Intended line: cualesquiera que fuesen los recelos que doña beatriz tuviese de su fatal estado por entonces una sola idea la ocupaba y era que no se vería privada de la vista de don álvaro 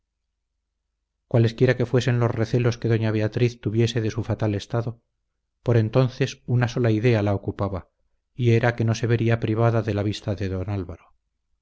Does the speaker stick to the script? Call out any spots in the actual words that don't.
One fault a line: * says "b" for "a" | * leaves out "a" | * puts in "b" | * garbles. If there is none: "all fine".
all fine